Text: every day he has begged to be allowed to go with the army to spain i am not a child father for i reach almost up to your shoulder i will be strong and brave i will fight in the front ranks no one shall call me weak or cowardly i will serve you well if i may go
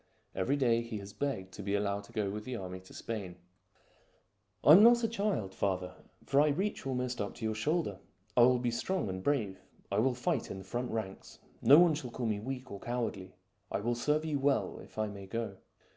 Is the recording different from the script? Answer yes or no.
no